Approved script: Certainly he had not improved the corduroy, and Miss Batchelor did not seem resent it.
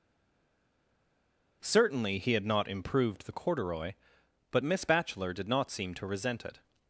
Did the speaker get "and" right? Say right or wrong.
wrong